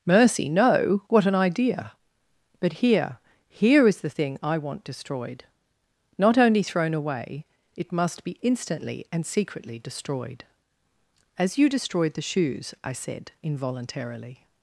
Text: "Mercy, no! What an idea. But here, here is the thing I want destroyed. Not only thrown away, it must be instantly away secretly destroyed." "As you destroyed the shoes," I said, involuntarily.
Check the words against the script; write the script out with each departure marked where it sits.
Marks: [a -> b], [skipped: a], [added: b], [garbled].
"Mercy, no! What an idea. But here, here is the thing I want destroyed. Not only thrown away, it must be instantly [away -> and] secretly destroyed." "As you destroyed the shoes," I said, involuntarily.